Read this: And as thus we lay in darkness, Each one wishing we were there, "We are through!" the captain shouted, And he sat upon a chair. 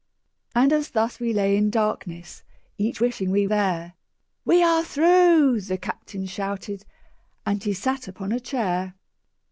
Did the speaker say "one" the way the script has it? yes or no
no